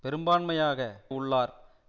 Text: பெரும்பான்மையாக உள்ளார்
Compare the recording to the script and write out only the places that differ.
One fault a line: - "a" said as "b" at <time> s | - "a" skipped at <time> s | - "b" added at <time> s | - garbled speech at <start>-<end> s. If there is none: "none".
none